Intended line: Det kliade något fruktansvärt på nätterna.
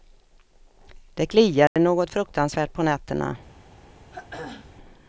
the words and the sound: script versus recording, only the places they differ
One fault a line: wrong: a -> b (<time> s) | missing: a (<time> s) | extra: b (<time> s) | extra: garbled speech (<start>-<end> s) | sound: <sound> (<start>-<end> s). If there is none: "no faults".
sound: dropout (1.7-1.8 s)
sound: throat clearing (4.1-4.7 s)